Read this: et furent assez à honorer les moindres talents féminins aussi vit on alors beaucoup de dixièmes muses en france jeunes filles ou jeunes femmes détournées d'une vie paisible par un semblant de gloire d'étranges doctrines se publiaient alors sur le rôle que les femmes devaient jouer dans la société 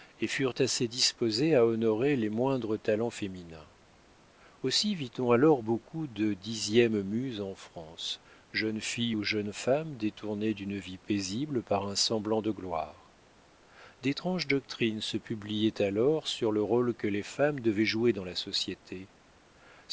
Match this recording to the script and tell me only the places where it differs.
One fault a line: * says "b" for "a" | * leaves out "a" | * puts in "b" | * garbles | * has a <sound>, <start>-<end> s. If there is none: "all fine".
* puts in "disposées"